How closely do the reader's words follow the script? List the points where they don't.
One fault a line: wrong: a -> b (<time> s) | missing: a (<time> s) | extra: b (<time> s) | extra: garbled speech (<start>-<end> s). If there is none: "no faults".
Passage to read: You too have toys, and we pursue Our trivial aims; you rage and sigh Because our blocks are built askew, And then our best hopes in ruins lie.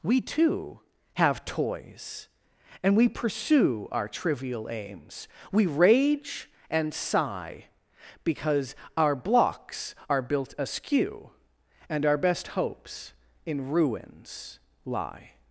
wrong: You -> We (0.0 s)
wrong: you -> we (5.5 s)
missing: then (12.0 s)